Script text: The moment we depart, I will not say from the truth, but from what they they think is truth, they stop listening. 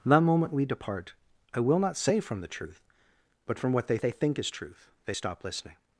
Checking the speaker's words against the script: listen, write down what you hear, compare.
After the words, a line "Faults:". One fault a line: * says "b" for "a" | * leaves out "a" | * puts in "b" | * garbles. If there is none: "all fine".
The moment we depart, I will not say from the truth, but from what they they think is truth, they stop listening.
Faults:
all fine